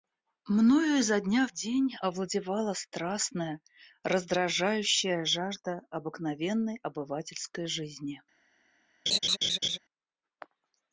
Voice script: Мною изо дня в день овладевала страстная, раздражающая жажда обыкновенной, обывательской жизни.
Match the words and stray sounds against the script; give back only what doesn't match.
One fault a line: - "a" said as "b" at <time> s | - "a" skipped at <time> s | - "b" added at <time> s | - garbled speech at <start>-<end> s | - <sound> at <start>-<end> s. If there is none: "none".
- laugh at 9.1-9.8 s